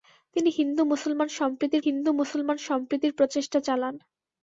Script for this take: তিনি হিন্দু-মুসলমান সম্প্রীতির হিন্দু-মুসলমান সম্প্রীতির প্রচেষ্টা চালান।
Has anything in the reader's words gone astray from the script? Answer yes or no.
no